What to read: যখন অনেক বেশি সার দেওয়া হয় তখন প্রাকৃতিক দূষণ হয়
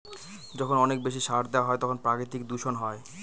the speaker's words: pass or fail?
pass